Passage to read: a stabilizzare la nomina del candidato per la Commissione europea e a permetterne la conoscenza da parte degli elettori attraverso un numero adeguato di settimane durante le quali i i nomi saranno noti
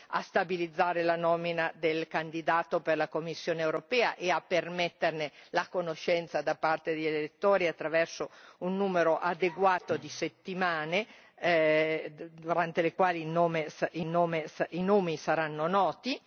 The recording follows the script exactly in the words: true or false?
true